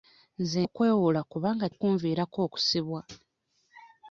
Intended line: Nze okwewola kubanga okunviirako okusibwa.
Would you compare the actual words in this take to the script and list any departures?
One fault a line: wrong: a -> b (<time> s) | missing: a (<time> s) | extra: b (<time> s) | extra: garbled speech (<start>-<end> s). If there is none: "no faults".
no faults